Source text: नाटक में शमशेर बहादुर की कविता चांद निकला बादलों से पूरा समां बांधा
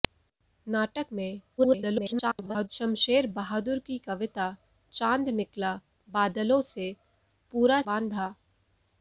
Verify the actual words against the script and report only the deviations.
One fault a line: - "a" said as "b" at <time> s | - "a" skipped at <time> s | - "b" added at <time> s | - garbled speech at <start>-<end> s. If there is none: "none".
- garbled speech at 1.6-2.7 s
- "समां" skipped at 7.8 s